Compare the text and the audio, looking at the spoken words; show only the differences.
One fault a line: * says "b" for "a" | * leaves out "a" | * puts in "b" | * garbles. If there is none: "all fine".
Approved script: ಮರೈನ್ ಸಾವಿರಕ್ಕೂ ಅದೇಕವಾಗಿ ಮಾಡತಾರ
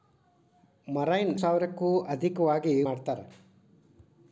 all fine